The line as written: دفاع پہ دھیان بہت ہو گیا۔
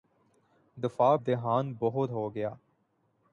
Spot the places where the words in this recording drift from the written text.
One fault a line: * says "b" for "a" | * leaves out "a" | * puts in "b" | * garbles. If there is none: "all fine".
* leaves out "پہ"